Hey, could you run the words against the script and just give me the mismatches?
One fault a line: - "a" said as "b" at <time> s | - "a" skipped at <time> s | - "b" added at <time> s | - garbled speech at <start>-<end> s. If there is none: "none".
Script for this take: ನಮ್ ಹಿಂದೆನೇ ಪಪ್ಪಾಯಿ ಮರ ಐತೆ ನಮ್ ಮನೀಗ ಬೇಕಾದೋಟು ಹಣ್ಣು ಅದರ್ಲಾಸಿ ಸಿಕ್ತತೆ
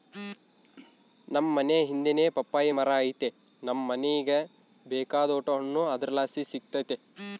- "ಮನೇ" added at 1.6 s